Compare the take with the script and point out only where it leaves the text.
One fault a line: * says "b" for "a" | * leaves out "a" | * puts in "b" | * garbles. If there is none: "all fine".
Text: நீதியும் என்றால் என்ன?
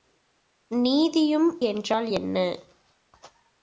all fine